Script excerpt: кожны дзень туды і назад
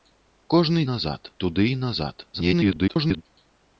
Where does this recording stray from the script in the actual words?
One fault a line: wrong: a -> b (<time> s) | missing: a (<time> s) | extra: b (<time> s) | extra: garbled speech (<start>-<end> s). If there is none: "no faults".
wrong: дзень -> назад (0.9 s)
extra: garbled speech (2.3-3.2 s)